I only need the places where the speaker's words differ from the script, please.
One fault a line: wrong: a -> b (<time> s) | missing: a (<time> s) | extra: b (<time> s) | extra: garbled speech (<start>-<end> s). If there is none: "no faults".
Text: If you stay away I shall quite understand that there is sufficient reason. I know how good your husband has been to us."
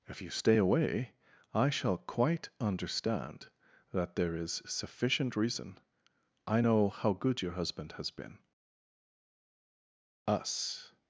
missing: to (8.4 s)